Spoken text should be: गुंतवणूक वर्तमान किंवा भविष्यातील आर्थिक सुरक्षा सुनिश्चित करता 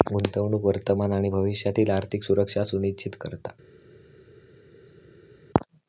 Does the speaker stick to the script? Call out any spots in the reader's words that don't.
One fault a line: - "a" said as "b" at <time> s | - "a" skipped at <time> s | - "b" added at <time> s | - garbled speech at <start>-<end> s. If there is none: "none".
- "किंवा" said as "आणि" at 1.1 s